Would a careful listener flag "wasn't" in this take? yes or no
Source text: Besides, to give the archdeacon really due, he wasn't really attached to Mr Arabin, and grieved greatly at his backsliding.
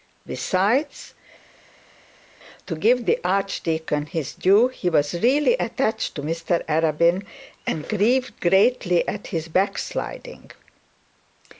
yes